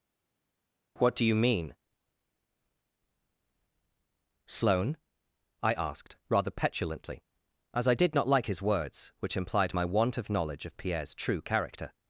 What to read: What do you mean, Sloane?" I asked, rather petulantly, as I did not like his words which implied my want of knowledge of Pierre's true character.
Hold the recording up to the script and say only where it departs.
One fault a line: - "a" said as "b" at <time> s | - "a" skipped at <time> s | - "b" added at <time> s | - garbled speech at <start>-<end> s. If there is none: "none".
none